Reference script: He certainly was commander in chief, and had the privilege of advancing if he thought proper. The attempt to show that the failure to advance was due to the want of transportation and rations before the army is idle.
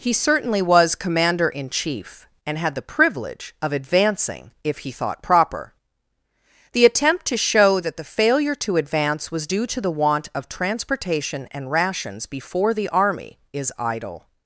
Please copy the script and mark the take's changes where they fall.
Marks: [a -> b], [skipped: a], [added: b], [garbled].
He certainly was commander in chief, and had the privilege of advancing if he thought proper. The attempt to show that the failure to advance was due to the want of transportation and rations before the army is idle.